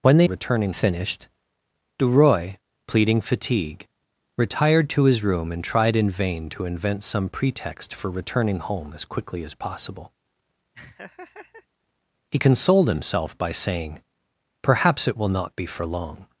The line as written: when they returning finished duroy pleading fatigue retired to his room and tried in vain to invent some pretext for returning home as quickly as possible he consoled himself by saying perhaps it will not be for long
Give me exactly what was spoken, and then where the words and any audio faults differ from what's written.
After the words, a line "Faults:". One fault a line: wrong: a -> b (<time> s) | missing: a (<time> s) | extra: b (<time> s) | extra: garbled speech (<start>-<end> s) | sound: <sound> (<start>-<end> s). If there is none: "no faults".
when they returning finished duroy pleading fatigue retired to his room and tried in vain to invent some pretext for returning home as quickly as possible he consoled himself by saying perhaps it will not be for long
Faults:
sound: laugh (10.7-11.7 s)